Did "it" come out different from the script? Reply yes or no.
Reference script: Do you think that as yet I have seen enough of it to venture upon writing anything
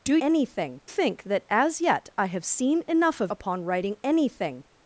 yes